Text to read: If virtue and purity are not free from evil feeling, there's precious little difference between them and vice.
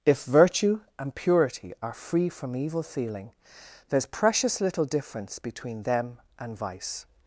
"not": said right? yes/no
no